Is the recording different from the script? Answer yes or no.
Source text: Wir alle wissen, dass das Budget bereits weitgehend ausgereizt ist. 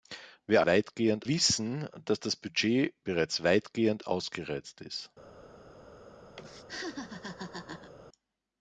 yes